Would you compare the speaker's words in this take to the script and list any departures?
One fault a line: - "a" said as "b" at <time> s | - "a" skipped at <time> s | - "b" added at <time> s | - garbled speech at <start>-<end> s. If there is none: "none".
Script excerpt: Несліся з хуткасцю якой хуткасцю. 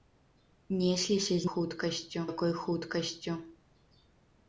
none